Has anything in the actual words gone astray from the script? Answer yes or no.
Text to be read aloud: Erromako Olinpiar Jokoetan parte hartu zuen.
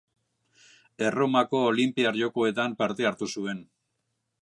no